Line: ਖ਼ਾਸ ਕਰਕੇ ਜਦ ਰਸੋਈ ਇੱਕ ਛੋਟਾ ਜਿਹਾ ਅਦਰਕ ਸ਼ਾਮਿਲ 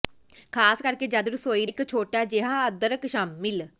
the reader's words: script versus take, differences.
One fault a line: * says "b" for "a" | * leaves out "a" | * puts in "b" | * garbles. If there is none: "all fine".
all fine